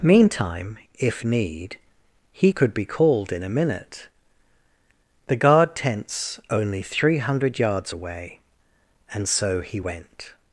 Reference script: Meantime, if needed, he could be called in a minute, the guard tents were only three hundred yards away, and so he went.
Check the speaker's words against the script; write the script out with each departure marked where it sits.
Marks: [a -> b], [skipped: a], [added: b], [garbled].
Meantime, if [needed, -> need] he could be called in a minute, the guard tents [skipped: were] only three hundred yards away, and so he went.